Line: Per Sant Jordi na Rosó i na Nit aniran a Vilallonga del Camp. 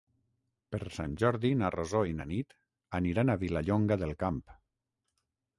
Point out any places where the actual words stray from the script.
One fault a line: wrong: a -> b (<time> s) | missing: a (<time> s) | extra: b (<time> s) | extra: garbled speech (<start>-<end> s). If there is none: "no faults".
no faults